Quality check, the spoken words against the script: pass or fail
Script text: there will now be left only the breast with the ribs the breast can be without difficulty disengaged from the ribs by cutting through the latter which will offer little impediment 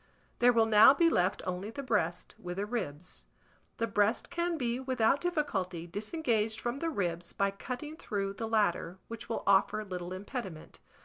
pass